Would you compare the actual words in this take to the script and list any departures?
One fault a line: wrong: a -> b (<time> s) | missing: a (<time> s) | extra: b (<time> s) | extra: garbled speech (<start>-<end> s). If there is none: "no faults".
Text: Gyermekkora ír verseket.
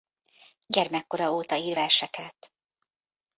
extra: óta (1.3 s)